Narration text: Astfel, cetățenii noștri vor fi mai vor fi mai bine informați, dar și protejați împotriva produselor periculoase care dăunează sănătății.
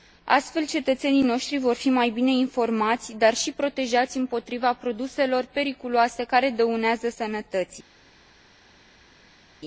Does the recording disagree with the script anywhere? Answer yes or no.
yes